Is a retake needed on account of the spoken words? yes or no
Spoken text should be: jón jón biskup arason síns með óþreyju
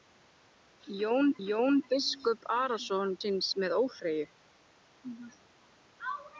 no